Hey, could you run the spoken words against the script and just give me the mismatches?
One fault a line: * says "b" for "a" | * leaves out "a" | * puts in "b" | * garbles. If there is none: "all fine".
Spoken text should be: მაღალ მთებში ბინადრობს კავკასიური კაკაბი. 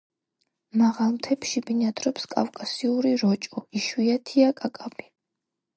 * puts in "როჭო იშვიათია"